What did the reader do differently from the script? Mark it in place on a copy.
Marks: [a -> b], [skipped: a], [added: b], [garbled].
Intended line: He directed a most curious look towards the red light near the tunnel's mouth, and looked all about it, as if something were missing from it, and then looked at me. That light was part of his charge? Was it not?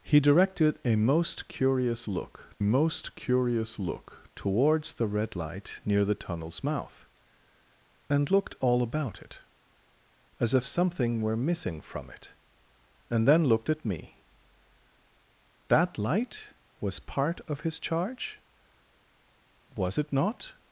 He directed a most curious look [added: most curious look] towards the red light near the tunnel's mouth, and looked all about it, as if something were missing from it, and then looked at me. That light was part of his charge? Was it not?